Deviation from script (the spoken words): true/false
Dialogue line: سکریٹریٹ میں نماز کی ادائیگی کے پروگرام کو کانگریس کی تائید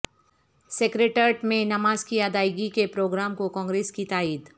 false